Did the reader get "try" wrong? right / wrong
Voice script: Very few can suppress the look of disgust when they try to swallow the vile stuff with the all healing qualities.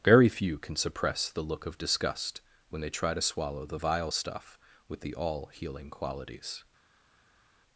right